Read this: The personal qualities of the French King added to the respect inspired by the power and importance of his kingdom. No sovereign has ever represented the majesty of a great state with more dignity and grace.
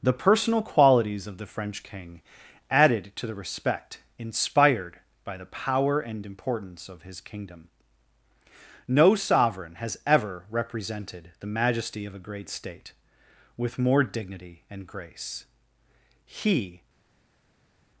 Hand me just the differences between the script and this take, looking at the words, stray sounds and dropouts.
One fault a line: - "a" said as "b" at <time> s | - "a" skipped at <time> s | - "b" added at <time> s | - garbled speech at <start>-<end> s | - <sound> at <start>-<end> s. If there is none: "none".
- "He" added at 16.3 s